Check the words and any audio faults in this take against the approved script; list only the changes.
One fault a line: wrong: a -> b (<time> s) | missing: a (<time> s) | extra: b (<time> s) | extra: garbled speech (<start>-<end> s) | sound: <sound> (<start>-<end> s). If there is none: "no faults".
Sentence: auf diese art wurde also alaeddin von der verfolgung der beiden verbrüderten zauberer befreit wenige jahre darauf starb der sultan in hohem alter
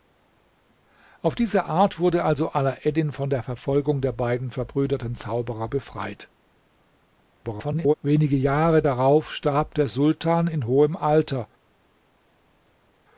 extra: garbled speech (7.4-7.9 s)